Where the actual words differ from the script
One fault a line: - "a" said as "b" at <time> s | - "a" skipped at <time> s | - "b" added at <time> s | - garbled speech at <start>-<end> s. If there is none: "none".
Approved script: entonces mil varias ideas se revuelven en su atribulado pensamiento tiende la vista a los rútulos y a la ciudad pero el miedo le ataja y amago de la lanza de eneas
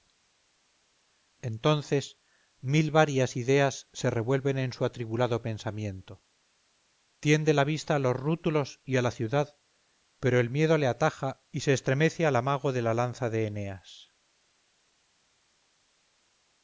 - "se estremece al" added at 11.6 s